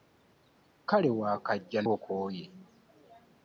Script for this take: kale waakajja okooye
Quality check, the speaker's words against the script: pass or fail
pass